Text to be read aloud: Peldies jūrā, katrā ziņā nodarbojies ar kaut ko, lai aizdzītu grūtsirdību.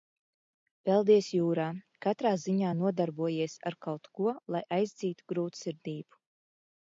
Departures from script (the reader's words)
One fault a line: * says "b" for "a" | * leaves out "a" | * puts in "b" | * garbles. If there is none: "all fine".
all fine